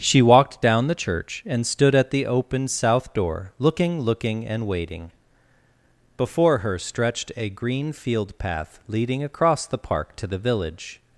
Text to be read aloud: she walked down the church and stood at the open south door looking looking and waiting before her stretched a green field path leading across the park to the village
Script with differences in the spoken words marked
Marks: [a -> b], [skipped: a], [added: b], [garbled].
she walked down the church and stood at the open south door looking looking and waiting before her stretched a green field path leading across the park to the village